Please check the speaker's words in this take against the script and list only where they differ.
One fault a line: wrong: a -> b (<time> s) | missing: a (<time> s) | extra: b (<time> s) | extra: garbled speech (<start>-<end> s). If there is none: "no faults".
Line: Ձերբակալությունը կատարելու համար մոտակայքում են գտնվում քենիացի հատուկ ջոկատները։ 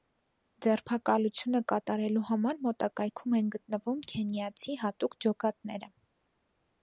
no faults